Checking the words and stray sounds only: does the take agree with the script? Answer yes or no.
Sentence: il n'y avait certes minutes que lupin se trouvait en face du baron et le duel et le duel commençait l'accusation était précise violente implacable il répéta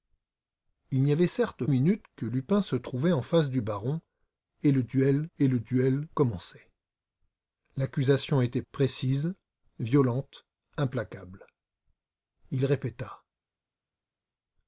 yes